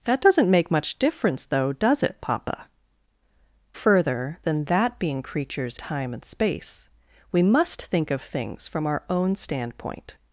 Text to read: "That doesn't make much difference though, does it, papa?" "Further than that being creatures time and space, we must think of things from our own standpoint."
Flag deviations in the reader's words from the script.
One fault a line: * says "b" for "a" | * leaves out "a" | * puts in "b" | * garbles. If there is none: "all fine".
all fine